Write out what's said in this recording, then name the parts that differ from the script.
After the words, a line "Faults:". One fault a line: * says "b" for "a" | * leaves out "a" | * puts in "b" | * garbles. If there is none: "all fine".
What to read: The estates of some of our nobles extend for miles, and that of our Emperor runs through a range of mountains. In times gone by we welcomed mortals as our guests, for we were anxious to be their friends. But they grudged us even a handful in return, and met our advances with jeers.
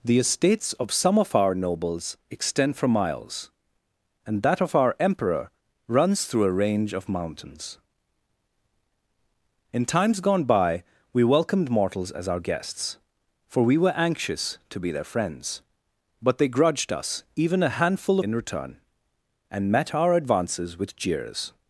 The estates of some of our nobles extend for miles, and that of our Emperor runs through a range of mountains. In times gone by we welcomed mortals as our guests, for we were anxious to be their friends. But they grudged us even a handful in return, and met our advances with jeers.
Faults:
all fine